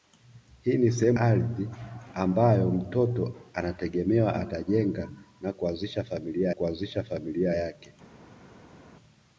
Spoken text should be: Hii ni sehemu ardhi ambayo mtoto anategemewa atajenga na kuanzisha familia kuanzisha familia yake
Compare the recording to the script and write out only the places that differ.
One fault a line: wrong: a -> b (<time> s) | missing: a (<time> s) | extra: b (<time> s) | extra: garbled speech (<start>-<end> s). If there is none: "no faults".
no faults